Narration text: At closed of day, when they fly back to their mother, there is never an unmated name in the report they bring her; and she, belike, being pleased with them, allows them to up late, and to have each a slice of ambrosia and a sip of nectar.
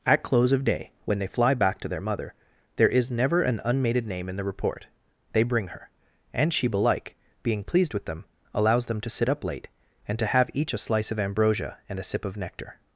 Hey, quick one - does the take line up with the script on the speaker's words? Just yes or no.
no